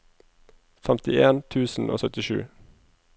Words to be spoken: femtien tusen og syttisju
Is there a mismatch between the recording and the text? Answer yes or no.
no